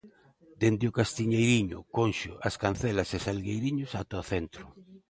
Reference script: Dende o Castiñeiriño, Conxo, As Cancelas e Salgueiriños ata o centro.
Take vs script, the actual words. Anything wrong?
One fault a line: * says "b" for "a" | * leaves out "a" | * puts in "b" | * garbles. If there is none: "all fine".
all fine